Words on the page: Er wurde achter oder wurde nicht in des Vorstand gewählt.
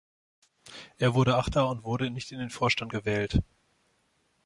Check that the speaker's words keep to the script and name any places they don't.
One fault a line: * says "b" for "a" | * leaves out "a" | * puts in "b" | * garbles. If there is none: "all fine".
* says "und" for "oder"
* says "den" for "des"